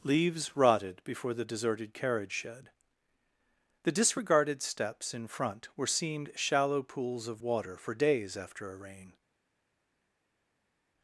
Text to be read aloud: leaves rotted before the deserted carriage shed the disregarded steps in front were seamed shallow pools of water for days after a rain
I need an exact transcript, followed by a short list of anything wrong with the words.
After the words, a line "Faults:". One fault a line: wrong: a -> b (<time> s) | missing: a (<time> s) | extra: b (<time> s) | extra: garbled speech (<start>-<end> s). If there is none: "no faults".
leaves rotted before the deserted carriage shed the disregarded steps in front were seamed shallow pools of water for days after a rain
Faults:
no faults